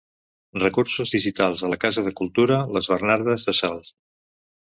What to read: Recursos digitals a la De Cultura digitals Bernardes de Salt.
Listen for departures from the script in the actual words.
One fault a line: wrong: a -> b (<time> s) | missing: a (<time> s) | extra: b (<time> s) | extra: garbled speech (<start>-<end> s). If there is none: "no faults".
extra: Casa (1.9 s)
wrong: digitals -> les (2.8 s)